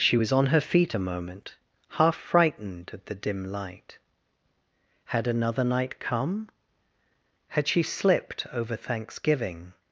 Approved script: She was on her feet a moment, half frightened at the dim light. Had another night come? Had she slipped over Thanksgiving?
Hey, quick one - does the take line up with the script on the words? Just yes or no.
yes